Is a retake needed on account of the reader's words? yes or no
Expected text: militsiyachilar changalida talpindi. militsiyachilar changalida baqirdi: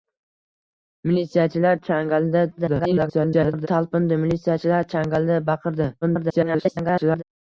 yes